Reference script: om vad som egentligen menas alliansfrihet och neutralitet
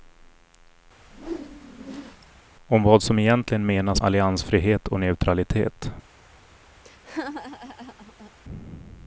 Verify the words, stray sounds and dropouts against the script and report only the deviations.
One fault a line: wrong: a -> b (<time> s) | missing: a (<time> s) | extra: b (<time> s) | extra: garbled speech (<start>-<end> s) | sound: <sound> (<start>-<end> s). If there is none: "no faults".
sound: whoosh (1.0-2.4 s)
sound: laugh (6.8-8.3 s)